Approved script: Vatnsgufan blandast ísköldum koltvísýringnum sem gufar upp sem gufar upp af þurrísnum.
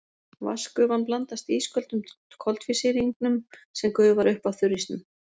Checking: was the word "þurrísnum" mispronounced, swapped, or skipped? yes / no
no